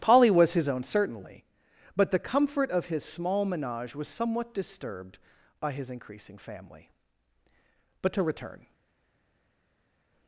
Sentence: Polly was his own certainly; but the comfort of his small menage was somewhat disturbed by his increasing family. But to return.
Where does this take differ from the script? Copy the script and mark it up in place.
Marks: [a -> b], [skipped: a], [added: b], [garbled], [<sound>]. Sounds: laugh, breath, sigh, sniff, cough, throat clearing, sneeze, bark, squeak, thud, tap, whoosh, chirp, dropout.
Polly was his own certainly; but the comfort of his small menage was somewhat disturbed by his increasing family. But to return.